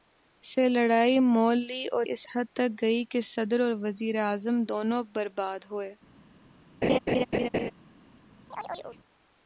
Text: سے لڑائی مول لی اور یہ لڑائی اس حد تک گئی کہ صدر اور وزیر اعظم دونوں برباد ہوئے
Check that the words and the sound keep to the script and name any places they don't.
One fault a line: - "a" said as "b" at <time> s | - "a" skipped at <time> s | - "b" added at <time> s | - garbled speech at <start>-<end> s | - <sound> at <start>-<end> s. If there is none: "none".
- "یہ لڑائی" skipped at 2.1 s
- laugh at 6.8-7.7 s
- chirp at 8.5-9.0 s